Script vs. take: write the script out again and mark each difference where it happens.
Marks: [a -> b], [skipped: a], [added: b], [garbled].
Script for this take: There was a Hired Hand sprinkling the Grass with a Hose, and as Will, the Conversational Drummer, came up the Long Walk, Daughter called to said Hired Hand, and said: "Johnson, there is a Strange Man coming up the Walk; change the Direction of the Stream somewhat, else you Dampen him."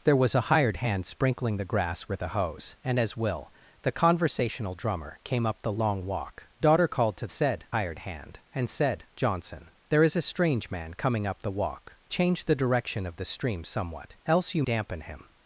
There was a Hired Hand sprinkling the Grass with a Hose, and as Will, the Conversational Drummer, came up the Long Walk, Daughter called to said Hired Hand, and said: "Johnson, there is a Strange Man coming up the Walk; change the Direction of the Stream somewhat, else you Dampen him."